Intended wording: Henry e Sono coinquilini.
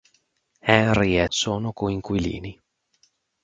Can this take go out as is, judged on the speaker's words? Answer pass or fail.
pass